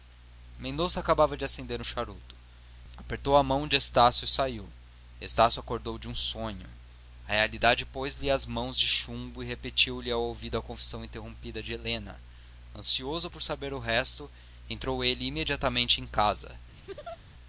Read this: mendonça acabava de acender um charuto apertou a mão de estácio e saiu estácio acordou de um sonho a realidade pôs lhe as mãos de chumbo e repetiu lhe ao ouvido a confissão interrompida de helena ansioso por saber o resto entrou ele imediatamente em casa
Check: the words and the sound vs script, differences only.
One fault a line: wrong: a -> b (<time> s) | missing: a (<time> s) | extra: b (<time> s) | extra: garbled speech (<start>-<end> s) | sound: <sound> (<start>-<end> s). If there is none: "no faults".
sound: laugh (16.7-17.2 s)